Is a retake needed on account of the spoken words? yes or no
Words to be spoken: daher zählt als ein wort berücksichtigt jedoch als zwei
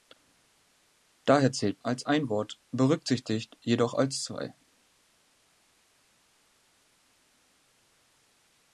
no